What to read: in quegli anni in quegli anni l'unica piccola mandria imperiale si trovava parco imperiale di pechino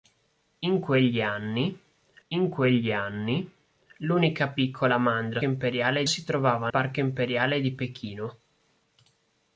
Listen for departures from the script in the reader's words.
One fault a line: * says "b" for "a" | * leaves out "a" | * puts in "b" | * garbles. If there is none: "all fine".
all fine